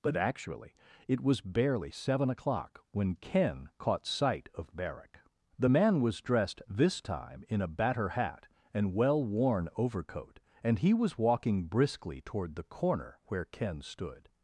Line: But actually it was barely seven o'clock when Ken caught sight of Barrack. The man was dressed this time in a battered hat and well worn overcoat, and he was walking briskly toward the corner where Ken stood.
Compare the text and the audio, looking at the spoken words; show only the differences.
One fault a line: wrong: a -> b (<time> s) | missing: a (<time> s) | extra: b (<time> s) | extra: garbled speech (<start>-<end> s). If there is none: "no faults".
wrong: battered -> batter (7.7 s)